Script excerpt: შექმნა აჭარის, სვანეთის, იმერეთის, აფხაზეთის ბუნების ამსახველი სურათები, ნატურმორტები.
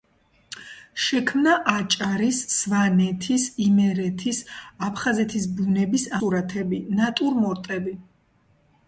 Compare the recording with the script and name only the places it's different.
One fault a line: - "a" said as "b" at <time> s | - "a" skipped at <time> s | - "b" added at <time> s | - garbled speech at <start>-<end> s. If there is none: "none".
- "ამსახველი" skipped at 6.1 s